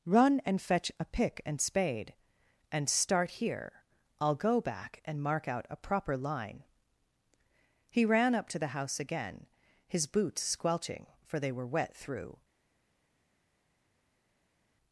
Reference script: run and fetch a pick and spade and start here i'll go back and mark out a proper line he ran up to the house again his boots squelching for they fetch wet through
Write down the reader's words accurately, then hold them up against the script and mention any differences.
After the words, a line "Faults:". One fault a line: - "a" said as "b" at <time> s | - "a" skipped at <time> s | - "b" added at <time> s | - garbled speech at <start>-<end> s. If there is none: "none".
run and fetch a pick and spade and start here i'll go back and mark out a proper line he ran up to the house again his boots squelching for they were wet through
Faults:
- "fetch" said as "were" at 11.5 s